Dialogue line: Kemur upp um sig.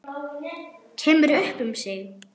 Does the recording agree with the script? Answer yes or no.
yes